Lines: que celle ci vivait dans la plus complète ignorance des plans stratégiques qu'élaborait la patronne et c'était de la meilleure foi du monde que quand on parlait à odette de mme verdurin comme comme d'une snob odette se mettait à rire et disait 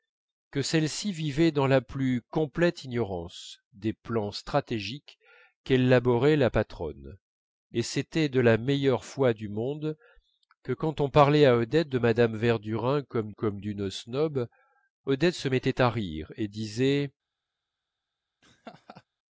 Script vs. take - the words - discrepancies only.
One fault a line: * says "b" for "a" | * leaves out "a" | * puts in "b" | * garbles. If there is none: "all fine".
all fine